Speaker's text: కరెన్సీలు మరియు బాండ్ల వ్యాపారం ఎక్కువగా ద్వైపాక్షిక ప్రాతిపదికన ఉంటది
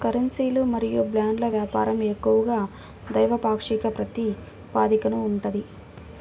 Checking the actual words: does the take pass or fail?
pass